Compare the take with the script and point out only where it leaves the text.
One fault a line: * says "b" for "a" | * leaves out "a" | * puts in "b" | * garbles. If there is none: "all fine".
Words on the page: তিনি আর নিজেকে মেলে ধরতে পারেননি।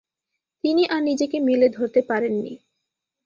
all fine